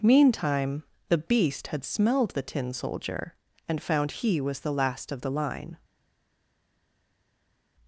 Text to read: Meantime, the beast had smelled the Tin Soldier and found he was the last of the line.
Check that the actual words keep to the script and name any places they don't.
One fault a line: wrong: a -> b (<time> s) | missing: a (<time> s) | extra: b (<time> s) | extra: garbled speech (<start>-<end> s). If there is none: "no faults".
no faults